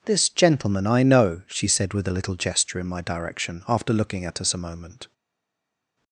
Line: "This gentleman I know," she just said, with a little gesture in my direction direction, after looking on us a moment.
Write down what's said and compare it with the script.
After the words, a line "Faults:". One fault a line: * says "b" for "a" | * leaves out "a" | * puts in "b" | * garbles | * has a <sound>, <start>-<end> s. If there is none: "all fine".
"This gentleman I know," she said, with a little gesture in my direction, after looking at us a moment.
Faults:
* leaves out "just"
* leaves out "direction"
* says "at" for "on"